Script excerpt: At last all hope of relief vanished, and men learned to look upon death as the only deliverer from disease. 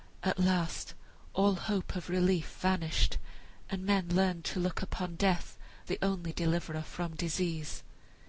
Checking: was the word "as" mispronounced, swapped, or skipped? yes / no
yes